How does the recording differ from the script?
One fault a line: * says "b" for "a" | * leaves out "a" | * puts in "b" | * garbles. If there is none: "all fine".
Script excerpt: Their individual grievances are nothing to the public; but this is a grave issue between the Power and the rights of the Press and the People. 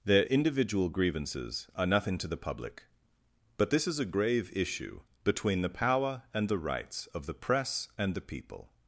all fine